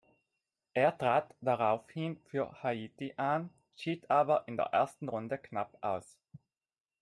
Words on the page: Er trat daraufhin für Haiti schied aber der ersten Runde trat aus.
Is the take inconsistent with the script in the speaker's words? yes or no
yes